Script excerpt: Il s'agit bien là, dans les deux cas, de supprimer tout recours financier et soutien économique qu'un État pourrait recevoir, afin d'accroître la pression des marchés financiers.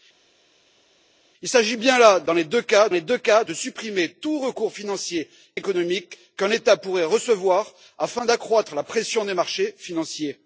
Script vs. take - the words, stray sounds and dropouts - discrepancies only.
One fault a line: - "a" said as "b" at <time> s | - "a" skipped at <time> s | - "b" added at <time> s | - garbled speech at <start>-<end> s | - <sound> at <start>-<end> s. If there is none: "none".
- "les deux cas" added at 2.9 s
- "et soutien" skipped at 5.3 s